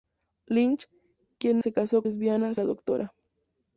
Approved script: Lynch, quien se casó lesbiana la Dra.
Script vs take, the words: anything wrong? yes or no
no